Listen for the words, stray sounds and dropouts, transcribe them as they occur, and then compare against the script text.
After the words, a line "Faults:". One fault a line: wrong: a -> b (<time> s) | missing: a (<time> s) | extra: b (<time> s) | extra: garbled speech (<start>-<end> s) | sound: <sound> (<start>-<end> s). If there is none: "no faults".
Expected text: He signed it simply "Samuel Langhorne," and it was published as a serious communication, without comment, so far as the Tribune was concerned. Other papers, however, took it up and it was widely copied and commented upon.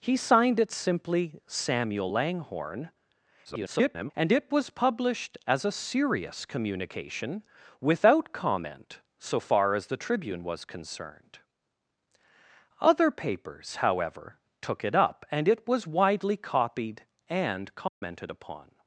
He signed it simply "Samuel Langhorne," [garbled] and it was published as a serious communication, without comment, so far as the Tribune was concerned. Other papers, however, took it up and it was widely copied and commented upon.
Faults:
extra: garbled speech (3.4-4.1 s)
sound: dropout (17.9-18.0 s)